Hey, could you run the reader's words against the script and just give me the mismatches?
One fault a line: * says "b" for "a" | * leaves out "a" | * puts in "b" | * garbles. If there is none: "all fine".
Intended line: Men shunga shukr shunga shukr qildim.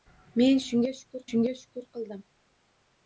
all fine